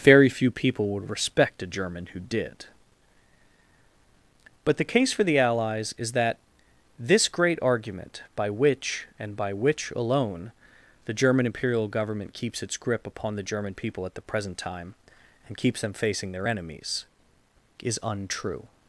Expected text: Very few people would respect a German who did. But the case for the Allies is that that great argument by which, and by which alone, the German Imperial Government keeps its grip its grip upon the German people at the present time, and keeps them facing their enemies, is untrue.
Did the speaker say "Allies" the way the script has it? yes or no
yes